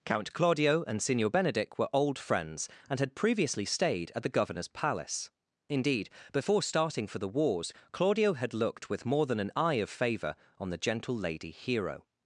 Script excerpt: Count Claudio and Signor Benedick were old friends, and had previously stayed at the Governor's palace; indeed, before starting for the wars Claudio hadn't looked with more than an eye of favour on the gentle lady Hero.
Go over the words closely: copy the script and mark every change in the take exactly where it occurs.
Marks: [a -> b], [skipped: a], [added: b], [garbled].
Count Claudio and Signor Benedick were old friends, and had previously stayed at the Governor's palace; indeed, before starting for the wars Claudio [hadn't -> had] looked with more than an eye of favour on the gentle lady Hero.